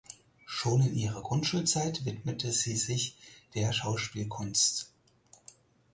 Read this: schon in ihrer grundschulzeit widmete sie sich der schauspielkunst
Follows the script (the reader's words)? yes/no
yes